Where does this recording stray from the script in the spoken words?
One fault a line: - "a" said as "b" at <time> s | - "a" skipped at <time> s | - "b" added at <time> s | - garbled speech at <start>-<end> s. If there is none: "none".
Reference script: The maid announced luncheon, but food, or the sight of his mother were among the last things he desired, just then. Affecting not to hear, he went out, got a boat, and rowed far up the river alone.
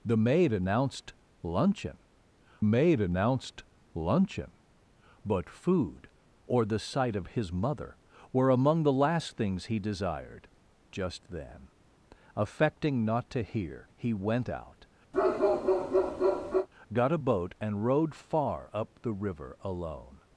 - "maid announced luncheon" added at 2.6 s